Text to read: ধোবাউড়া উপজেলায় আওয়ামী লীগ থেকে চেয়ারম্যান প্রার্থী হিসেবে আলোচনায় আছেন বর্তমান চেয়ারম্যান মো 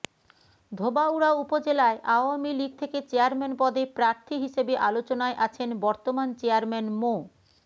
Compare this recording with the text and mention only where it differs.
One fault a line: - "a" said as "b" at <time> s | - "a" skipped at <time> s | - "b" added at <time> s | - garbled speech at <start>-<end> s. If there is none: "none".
- "পদে" added at 3.6 s